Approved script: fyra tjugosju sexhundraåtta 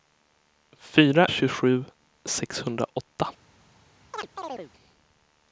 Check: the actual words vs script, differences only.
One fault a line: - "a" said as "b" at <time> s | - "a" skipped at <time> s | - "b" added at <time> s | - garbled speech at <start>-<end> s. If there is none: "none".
none